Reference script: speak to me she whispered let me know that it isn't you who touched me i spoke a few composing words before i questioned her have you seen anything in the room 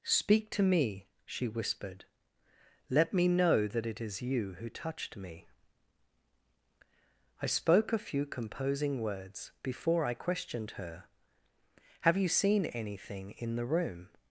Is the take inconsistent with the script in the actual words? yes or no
yes